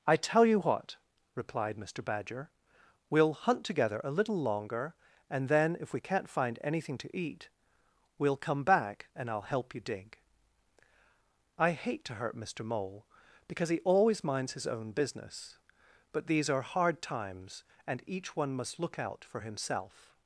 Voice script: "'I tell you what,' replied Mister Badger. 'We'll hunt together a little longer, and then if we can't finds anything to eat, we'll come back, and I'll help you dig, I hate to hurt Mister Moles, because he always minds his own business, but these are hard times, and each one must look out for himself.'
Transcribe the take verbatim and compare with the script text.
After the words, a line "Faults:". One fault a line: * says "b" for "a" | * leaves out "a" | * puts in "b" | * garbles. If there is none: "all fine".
"'I tell you what,' replied Mister Badger. 'We'll hunt together a little longer, and then if we can't find anything to eat, we'll come back, and I'll help you dig, I hate to hurt Mister Mole, because he always minds his own business, but these are hard times, and each one must look out for himself.'
Faults:
* says "find" for "finds"
* says "Mole" for "Moles"